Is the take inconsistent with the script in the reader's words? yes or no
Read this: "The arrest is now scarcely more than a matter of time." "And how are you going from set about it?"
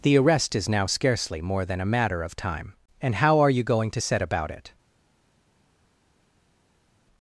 yes